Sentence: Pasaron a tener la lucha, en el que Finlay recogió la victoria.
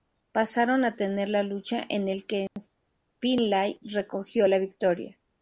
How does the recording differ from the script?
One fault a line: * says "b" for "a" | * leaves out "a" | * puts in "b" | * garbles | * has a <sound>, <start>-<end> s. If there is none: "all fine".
* has a dropout, 2.5-2.6 s